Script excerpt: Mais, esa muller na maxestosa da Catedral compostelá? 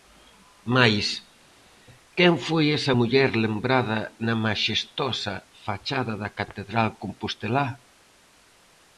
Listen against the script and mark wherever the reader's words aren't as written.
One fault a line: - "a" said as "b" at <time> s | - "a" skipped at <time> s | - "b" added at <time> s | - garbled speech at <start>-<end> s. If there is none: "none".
- "quen foi" added at 2.2 s
- "lembrada" added at 3.4 s
- "fachada" added at 5.6 s